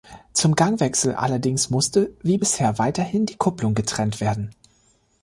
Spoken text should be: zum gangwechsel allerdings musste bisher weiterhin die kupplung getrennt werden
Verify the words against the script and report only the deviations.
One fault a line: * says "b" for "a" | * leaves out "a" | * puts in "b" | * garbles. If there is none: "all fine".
* puts in "wie"